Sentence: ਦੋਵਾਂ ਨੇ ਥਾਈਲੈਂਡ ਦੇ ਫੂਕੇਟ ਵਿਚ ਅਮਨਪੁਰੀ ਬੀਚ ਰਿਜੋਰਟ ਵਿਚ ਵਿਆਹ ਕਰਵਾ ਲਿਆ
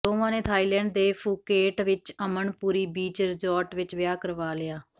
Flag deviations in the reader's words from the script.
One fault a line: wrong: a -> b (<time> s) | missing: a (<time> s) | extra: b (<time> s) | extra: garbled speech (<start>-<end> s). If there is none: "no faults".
no faults